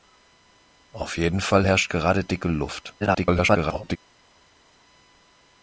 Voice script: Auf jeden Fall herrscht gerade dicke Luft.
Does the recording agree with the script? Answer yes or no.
no